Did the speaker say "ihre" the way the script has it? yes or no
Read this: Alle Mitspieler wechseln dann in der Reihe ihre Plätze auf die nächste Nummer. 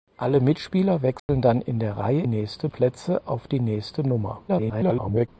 no